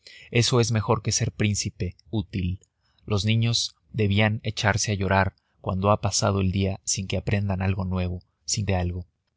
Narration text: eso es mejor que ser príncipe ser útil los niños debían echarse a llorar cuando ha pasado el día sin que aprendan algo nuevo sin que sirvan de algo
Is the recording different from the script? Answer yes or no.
yes